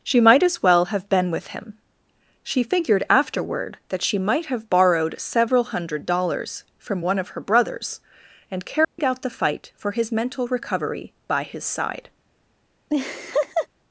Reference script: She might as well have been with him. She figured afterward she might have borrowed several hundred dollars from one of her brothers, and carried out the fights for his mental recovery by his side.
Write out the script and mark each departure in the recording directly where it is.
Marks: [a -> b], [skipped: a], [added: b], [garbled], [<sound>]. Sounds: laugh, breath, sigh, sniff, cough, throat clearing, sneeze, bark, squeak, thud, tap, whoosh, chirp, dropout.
She might as well have been with him. She figured afterward [added: that] she might have borrowed several hundred dollars from one of her brothers, and carried [dropout] out the [fights -> fight] for his mental recovery by his side. [laugh]